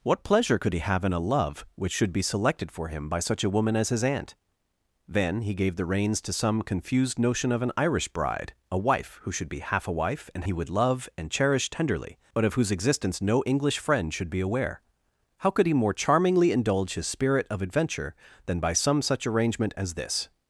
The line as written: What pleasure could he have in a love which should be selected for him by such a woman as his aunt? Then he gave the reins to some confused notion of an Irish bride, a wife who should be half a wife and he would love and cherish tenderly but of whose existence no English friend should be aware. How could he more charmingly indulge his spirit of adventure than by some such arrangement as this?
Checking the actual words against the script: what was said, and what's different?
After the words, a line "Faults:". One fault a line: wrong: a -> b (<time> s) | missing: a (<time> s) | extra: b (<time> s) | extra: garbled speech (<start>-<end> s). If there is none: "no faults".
What pleasure could he have in a love which should be selected for him by such a woman as his aunt? Then he gave the reins to some confused notion of an Irish bride, a wife who should be half a wife and he would love and cherish tenderly but of whose existence no English friend should be aware. How could he more charmingly indulge his spirit of adventure than by some such arrangement as this?
Faults:
no faults